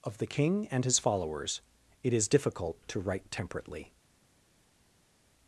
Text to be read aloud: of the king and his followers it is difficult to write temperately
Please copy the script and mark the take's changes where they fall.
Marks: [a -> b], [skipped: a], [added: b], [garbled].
of the king and his followers it is difficult to write temperately